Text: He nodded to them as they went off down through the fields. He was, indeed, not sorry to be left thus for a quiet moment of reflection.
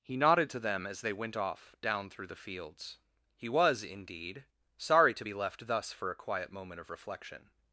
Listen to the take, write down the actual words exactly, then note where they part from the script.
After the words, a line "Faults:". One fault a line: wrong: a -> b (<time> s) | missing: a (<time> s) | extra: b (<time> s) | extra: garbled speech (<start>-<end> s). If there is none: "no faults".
He nodded to them as they went off down through the fields. He was, indeed, sorry to be left thus for a quiet moment of reflection.
Faults:
missing: not (4.5 s)